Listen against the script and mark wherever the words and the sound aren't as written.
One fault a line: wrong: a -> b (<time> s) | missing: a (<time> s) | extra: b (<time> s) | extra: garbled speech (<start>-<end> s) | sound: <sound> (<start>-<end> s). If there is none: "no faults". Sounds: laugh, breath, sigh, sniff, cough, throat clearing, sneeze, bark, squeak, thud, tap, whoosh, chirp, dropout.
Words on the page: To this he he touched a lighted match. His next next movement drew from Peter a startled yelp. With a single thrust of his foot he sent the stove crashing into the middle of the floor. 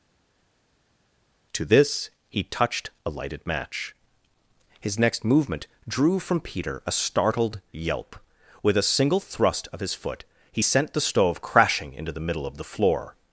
missing: he (2.4 s)
missing: next (5.2 s)